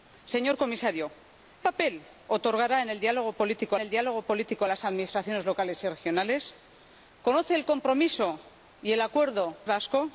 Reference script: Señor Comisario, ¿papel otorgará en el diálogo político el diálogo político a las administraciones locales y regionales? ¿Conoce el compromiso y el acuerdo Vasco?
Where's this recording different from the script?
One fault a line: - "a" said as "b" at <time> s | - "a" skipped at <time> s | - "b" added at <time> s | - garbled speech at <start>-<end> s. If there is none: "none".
none